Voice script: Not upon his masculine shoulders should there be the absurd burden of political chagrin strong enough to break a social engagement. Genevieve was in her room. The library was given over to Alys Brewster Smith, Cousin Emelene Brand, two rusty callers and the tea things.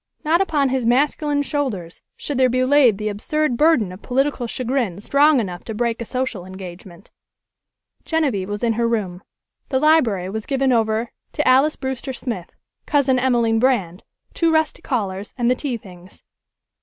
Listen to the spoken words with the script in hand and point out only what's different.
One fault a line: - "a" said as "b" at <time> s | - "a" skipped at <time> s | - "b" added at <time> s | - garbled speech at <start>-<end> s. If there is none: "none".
- "laid" added at 2.6 s